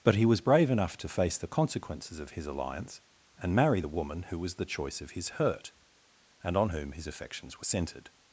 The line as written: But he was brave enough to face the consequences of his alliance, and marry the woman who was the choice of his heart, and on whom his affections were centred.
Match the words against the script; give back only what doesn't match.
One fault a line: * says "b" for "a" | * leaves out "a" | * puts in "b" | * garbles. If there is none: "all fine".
* says "hurt" for "heart"